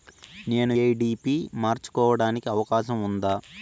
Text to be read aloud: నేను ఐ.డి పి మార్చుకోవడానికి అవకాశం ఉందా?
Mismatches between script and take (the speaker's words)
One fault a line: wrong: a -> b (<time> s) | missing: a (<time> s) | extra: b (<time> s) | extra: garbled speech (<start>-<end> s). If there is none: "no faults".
no faults